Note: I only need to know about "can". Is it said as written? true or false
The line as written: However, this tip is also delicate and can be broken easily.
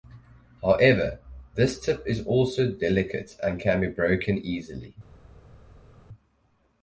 true